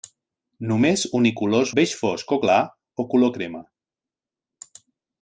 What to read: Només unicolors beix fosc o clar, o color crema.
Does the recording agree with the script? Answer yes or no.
yes